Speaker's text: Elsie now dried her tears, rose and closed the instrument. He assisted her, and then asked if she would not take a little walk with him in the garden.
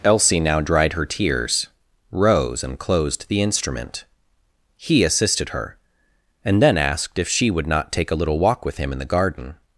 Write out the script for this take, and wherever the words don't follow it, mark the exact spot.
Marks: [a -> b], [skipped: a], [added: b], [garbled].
Elsie now dried her tears, rose and closed the instrument. He assisted her, and then asked if she would not take a little walk with him in the garden.